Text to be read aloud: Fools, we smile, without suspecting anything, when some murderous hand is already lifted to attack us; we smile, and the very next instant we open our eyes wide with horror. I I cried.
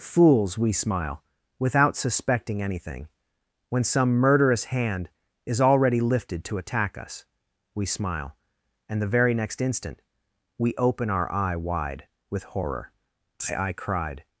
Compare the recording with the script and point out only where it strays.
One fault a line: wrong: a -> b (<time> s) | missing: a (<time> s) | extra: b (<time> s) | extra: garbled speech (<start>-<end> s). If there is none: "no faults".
wrong: eyes -> eye (11.3 s)